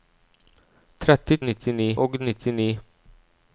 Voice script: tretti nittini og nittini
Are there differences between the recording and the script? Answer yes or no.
no